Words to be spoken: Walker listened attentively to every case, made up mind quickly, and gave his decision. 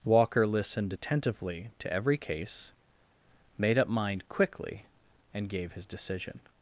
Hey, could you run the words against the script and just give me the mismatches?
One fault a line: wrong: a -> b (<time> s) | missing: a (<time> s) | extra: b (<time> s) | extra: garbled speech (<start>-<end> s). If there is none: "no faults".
no faults